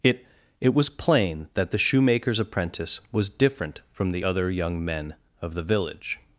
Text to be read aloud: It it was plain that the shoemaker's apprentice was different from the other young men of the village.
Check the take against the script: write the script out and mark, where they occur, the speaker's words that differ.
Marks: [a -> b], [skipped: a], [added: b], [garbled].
It it was plain that the shoemaker's apprentice was different from the other young men of the village.